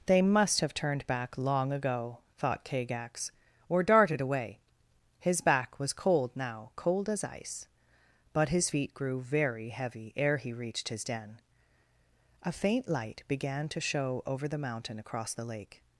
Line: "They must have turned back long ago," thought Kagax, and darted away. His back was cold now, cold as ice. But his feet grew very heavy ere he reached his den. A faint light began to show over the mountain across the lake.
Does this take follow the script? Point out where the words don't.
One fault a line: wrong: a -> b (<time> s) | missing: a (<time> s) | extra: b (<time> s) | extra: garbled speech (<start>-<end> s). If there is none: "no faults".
wrong: and -> or (3.7 s)